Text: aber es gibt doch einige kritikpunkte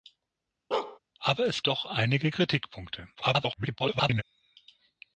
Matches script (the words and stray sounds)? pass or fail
fail